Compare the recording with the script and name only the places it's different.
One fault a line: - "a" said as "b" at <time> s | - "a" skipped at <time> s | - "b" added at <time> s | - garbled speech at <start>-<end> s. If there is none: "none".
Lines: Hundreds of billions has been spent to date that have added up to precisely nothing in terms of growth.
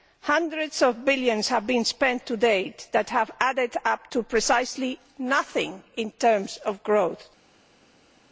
- "has" said as "have" at 1.5 s